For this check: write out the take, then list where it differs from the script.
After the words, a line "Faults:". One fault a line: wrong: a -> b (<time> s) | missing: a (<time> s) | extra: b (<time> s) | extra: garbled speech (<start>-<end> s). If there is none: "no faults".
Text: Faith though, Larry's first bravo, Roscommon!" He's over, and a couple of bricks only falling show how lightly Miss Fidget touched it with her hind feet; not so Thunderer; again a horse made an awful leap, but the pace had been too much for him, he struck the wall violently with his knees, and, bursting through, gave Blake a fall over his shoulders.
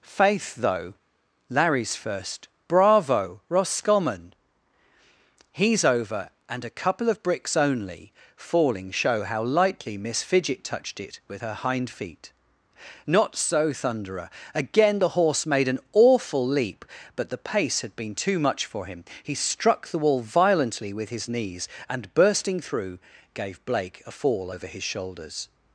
Faith though, Larry's first bravo, Roscommon!" He's over, and a couple of bricks only falling show how lightly Miss Fidget touched it with her hind feet; not so Thunderer; again the horse made an awful leap, but the pace had been too much for him, he struck the wall violently with his knees, and, bursting through, gave Blake a fall over his shoulders.
Faults:
wrong: a -> the (15.0 s)